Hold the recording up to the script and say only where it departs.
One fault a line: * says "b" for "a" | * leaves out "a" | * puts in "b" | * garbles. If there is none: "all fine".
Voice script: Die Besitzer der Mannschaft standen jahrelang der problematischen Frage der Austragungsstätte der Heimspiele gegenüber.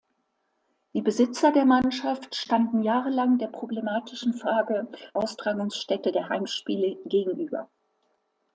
* leaves out "der"